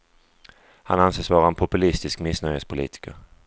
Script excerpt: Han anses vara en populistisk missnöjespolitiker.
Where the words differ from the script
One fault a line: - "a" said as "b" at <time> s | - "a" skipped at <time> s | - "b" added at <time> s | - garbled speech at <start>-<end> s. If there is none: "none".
none